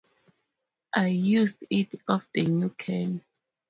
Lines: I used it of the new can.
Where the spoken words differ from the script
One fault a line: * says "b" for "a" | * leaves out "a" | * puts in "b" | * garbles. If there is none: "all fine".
all fine